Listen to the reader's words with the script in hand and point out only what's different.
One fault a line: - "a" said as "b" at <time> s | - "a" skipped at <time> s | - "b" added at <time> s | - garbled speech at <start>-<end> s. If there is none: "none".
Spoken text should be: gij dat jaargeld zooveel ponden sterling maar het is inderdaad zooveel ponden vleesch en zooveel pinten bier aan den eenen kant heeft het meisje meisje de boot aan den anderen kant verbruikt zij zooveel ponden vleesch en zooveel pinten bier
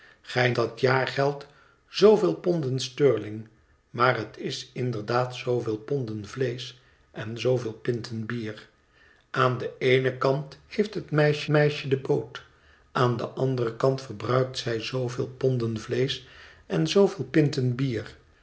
none